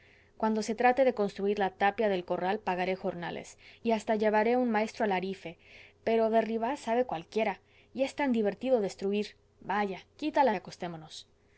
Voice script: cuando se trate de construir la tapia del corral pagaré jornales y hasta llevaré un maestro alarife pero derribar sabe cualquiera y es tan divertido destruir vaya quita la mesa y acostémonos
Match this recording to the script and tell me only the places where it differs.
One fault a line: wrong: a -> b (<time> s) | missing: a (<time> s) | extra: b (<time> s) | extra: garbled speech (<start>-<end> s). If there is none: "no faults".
missing: mesa (10.6 s)